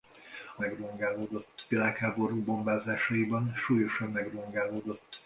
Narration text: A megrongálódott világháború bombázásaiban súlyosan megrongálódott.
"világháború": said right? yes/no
yes